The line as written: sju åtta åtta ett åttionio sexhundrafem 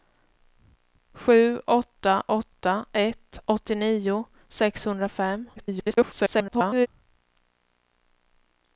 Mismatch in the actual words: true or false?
true